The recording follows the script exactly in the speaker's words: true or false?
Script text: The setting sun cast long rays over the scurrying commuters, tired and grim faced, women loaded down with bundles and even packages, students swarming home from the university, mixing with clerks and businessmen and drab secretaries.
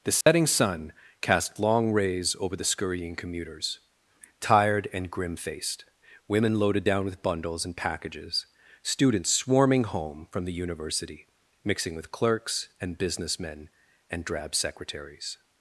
false